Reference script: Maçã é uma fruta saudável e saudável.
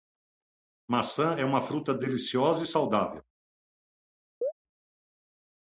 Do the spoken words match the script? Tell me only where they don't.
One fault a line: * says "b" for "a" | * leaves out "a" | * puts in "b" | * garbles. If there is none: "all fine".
* says "deliciosa" for "saudável"